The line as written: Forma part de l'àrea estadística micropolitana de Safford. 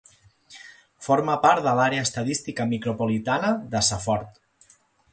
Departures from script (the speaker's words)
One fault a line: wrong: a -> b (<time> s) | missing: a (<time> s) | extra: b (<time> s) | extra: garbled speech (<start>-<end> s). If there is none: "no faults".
no faults